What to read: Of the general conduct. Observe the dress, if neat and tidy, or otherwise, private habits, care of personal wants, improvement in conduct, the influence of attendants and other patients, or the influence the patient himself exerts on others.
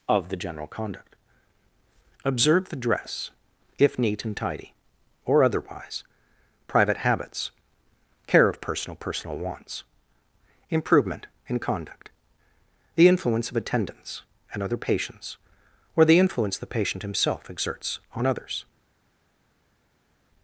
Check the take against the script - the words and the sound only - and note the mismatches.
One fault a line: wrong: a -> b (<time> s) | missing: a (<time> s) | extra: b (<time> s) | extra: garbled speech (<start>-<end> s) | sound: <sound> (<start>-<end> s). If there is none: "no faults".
extra: personal (9.0 s)